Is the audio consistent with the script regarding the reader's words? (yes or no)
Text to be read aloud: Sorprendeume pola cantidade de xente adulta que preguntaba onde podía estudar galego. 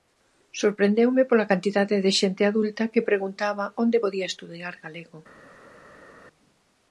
yes